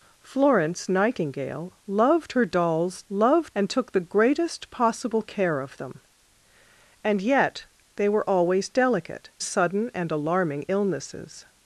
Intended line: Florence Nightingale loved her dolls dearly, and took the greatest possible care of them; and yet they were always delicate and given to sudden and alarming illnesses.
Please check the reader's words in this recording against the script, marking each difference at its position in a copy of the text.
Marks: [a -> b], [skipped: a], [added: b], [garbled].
Florence Nightingale loved her dolls [dearly, -> loved] and took the greatest possible care of them; and yet they were always delicate [skipped: and given to] sudden and alarming illnesses.